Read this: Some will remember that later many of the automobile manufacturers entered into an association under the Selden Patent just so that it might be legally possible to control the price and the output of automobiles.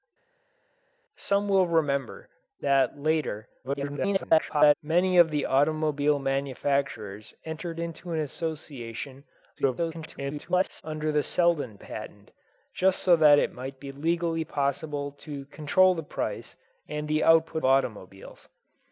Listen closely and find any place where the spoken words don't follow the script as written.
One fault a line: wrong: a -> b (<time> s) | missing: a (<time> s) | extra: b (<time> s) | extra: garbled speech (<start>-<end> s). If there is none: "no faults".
extra: garbled speech (3.6-4.7 s)
extra: garbled speech (9.6-10.8 s)
missing: of (17.6 s)